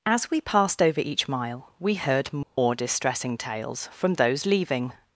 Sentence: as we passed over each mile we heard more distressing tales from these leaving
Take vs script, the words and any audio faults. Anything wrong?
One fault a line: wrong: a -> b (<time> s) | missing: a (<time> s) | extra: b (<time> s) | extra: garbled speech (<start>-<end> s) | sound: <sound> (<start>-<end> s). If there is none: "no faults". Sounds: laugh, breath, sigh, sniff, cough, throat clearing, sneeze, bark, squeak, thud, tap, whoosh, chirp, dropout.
sound: dropout (2.4-2.6 s)
wrong: these -> those (4.2 s)